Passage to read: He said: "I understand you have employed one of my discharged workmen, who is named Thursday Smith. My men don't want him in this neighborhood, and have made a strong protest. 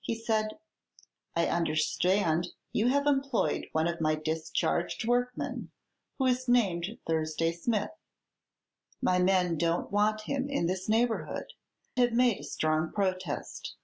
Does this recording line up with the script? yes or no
no